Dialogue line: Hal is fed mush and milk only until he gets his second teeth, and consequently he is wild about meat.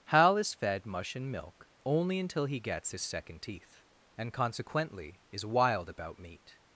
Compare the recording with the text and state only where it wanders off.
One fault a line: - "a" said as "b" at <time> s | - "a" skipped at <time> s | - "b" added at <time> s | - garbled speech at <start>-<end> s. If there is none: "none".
- "he" skipped at 5.2 s